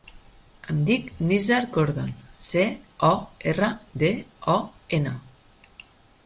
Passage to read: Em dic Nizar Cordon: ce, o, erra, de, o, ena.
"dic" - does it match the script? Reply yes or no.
yes